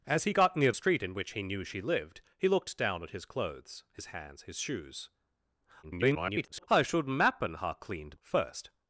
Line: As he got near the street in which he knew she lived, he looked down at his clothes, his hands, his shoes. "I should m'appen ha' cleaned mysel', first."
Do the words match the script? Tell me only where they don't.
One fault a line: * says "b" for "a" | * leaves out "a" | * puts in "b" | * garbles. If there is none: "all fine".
* leaves out "the"
* garbles
* leaves out "mysel"